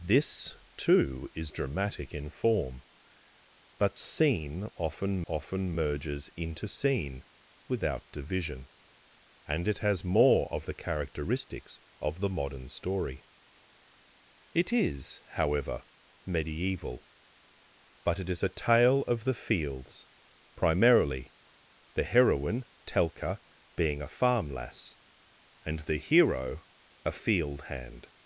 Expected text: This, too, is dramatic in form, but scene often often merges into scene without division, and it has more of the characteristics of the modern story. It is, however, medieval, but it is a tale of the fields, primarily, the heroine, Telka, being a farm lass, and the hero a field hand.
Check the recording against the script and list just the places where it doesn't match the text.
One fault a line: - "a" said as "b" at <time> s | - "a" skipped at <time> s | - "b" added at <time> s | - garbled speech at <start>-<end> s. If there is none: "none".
none